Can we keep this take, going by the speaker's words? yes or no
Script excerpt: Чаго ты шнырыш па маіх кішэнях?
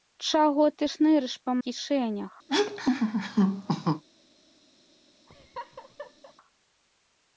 no